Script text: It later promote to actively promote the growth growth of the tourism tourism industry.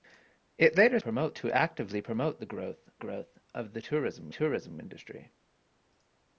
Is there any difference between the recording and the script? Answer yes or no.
no